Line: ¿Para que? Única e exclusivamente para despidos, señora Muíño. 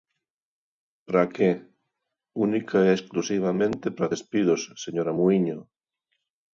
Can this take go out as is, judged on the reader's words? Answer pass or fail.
pass